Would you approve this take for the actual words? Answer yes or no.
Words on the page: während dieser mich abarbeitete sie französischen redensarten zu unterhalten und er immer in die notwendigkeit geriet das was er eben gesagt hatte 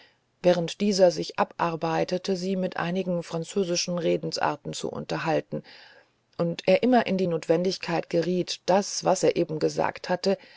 no